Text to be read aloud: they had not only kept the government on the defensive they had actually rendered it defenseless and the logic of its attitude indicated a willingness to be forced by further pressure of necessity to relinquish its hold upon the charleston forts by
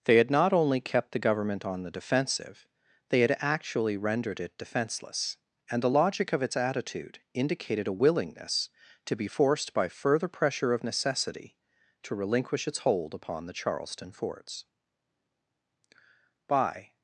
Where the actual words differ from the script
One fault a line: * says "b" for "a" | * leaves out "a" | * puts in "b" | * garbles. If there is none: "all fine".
all fine